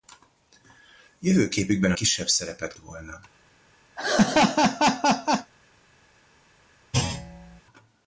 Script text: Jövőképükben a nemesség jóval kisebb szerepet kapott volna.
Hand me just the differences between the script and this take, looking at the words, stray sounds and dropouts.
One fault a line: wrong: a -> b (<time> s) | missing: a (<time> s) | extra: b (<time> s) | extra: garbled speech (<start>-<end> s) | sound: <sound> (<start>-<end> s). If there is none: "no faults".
missing: nemesség jóval (2.0 s)
missing: kapott (2.7 s)
sound: laugh (4.0-5.5 s)
sound: thud (6.9-7.6 s)